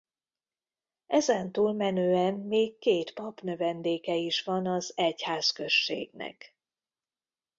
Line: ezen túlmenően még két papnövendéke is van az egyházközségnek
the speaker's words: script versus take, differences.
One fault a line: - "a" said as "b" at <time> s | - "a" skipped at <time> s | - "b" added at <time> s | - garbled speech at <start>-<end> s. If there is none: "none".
none